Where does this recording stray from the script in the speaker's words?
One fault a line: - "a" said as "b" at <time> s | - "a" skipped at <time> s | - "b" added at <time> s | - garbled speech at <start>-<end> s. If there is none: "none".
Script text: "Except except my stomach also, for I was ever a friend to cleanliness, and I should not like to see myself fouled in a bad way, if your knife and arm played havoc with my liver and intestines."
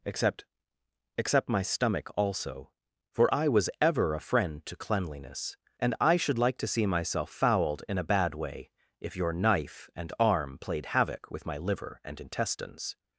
- "not" skipped at 6.4 s